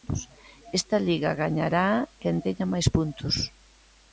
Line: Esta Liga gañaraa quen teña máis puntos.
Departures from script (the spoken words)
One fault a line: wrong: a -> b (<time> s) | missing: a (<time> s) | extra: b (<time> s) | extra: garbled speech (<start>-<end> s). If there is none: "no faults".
no faults